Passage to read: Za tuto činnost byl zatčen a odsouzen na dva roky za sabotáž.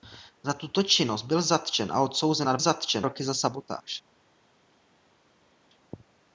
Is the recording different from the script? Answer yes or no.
yes